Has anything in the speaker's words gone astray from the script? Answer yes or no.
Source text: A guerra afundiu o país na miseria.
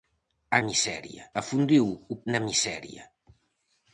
yes